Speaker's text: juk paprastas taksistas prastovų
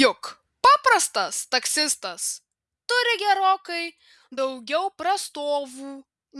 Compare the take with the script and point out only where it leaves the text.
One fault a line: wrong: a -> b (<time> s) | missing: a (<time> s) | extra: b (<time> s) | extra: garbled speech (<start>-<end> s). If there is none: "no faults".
extra: turi gerokai daugiau (2.9 s)